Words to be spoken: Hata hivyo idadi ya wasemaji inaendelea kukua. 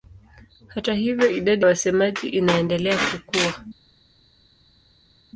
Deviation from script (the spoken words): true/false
true